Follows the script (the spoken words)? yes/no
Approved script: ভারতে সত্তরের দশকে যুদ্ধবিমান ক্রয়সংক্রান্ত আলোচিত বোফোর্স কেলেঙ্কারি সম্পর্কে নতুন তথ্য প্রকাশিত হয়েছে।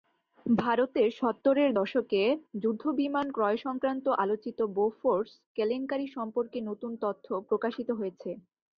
yes